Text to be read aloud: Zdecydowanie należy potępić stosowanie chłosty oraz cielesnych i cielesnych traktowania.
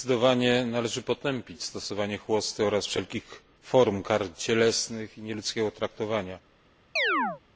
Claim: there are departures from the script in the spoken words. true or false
true